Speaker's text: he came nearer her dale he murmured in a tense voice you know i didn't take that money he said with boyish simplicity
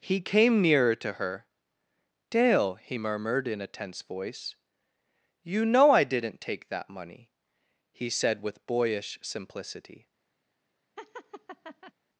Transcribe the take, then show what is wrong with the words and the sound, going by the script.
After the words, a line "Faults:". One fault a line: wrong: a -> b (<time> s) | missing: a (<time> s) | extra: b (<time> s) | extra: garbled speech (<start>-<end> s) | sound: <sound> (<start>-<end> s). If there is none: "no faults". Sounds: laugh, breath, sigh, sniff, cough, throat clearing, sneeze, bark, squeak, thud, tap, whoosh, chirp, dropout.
he came nearer to her dale he murmured in a tense voice you know i didn't take that money he said with boyish simplicity
Faults:
extra: to (0.9 s)
sound: laugh (11.0-11.9 s)